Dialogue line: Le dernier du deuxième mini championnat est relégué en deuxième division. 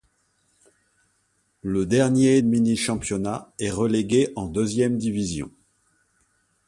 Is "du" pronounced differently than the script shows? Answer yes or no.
yes